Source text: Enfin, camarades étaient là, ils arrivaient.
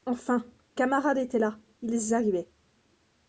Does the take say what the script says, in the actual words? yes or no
yes